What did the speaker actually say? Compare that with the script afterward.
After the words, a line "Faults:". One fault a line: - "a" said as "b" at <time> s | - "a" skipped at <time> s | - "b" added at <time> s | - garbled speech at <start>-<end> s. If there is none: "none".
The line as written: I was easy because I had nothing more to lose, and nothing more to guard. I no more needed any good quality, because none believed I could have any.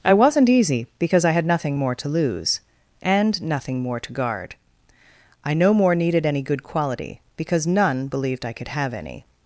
I wasn't easy because I had nothing more to lose, and nothing more to guard. I no more needed any good quality, because none believed I could have any.
Faults:
- "was" said as "wasn't" at 0.1 s